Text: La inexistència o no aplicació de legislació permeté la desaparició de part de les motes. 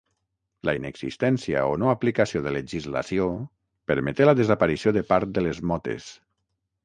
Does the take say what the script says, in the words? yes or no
yes